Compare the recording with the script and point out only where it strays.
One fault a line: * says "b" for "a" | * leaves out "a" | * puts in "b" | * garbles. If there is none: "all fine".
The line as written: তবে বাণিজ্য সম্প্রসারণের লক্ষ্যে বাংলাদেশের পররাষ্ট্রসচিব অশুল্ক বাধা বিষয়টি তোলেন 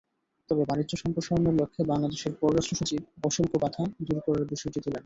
* puts in "দূর করার"